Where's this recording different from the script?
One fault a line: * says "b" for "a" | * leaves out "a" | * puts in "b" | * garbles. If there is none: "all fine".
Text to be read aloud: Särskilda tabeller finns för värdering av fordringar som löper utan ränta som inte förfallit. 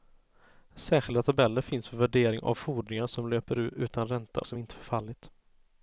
all fine